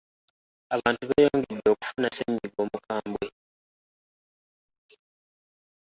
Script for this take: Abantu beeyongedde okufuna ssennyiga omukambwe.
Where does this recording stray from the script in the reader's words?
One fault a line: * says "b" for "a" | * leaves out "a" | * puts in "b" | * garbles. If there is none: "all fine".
all fine